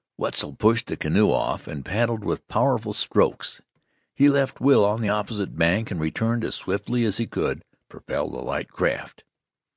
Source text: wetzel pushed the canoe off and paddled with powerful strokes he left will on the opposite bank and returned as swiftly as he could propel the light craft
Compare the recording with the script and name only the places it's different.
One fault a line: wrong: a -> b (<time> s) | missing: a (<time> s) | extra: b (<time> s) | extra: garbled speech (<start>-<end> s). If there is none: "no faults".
no faults